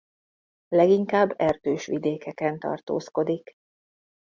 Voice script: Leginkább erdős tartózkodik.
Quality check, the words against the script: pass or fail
fail